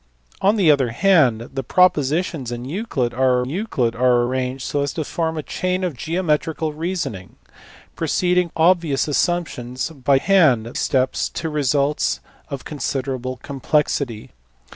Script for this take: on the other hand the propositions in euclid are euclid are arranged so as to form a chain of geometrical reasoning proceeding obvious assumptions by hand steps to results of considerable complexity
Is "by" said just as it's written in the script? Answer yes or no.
yes